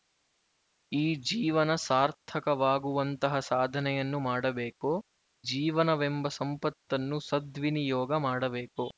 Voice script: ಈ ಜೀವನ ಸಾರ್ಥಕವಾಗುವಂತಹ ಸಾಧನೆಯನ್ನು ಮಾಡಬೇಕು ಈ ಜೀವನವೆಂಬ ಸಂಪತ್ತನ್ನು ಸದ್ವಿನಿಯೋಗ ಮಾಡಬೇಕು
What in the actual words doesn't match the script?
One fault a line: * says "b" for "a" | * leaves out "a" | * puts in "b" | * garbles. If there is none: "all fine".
* leaves out "ಈ"